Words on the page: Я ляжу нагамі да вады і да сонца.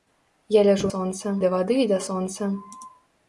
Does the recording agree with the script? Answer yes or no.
no